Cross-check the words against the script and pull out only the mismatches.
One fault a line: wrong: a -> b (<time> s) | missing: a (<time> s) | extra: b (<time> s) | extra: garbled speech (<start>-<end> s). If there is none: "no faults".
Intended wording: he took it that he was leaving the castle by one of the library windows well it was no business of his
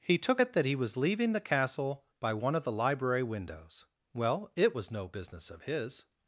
no faults